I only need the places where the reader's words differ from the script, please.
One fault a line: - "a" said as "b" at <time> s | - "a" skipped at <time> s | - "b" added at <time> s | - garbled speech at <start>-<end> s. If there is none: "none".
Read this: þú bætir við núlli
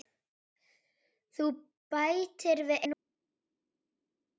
none